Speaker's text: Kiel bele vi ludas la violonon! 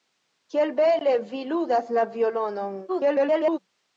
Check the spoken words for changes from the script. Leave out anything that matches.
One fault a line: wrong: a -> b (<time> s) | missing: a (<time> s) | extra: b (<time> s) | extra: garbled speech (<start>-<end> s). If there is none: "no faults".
extra: garbled speech (2.9-3.6 s)